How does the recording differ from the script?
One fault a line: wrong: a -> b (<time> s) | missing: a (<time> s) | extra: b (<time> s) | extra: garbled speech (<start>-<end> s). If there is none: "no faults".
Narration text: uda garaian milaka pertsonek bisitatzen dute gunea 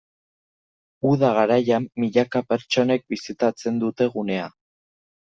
no faults